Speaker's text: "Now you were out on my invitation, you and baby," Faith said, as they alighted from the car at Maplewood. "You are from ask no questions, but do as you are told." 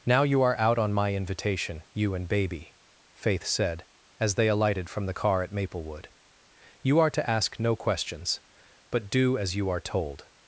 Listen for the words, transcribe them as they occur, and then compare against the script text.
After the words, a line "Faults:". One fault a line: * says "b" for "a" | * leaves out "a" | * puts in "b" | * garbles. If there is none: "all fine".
"Now you are out on my invitation, you and baby," Faith said, as they alighted from the car at Maplewood. "You are to ask no questions, but do as you are told."
Faults:
* says "are" for "were"
* says "to" for "from"